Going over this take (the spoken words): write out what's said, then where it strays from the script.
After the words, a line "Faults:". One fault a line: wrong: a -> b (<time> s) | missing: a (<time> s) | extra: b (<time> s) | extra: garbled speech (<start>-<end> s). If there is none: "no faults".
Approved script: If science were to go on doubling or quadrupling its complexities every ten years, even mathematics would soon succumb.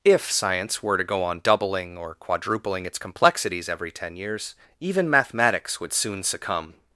If science were to go on doubling or quadrupling its complexities every ten years, even mathematics would soon succumb.
Faults:
no faults